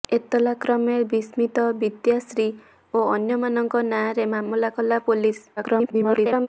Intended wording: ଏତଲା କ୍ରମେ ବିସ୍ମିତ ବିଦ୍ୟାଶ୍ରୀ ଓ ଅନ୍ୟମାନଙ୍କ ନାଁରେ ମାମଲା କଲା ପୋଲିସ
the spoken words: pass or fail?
fail